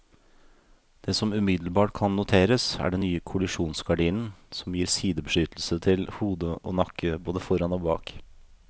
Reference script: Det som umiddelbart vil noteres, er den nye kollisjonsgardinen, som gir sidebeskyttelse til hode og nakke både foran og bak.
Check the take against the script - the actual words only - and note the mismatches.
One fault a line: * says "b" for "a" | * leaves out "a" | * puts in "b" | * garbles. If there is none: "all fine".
* says "kan" for "vil"